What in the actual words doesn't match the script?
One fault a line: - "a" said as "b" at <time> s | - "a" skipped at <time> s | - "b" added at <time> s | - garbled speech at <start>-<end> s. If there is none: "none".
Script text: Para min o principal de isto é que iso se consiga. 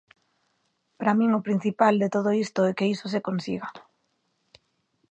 - "todo" added at 2.1 s